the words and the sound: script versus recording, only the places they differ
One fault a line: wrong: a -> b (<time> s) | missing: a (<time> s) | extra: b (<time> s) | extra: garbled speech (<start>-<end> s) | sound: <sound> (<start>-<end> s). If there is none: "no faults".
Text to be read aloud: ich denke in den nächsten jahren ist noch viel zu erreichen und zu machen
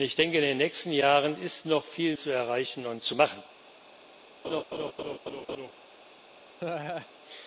sound: laugh (4.4-5.7 s)
sound: laugh (6.6-7.1 s)